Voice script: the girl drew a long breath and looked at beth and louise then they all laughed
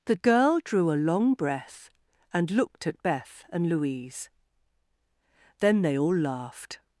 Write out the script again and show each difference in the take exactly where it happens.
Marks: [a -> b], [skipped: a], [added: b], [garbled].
the girl drew a long breath and looked at beth and louise then they all laughed